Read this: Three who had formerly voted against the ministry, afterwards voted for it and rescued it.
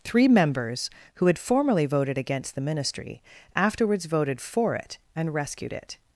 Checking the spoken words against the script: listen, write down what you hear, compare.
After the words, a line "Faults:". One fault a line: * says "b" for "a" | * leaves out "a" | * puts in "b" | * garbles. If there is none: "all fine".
Three members, who had formerly voted against the ministry, afterwards voted for it and rescued it.
Faults:
* puts in "members"